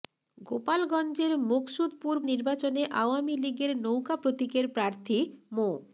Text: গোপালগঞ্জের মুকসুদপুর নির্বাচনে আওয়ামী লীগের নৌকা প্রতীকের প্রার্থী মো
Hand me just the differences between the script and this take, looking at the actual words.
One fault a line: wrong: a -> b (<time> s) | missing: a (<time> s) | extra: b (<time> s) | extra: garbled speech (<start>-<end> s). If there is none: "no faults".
no faults